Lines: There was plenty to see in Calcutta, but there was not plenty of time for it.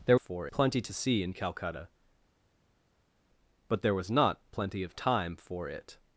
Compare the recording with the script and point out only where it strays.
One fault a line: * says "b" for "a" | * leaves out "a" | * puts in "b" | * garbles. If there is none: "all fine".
* says "for" for "was"